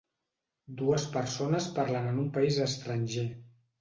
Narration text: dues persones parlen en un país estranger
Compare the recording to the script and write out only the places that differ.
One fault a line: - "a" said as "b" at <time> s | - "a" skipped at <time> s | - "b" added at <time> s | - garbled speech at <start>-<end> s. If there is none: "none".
none